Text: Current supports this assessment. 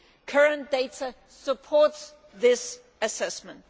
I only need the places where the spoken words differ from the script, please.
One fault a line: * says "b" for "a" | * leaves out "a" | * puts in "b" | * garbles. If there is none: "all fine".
* puts in "data"